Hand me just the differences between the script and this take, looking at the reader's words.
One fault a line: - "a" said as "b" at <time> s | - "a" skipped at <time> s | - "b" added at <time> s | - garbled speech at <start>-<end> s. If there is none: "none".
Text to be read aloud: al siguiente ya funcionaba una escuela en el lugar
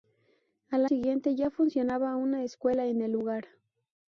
none